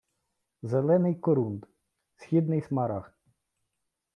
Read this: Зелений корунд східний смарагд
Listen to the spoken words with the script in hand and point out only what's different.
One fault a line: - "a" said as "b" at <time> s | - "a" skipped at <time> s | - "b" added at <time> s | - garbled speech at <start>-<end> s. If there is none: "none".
none